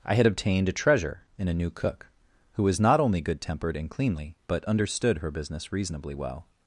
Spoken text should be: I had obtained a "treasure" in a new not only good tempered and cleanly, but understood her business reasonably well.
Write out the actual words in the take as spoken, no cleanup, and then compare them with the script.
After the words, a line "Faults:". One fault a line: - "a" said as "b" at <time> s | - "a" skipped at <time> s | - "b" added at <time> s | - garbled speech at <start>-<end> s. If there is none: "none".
I had obtained a "treasure" in a new cook, who was not only good tempered and cleanly, but understood her business reasonably well.
Faults:
- "cook who was" added at 1.7 s